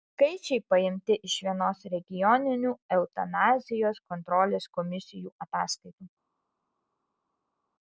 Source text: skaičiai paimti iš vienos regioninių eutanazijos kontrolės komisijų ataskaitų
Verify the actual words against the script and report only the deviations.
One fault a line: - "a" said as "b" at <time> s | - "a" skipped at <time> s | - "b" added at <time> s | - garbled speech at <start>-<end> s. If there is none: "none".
none